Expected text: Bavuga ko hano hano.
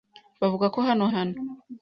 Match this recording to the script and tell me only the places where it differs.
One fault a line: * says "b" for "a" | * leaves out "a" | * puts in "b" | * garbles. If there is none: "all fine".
all fine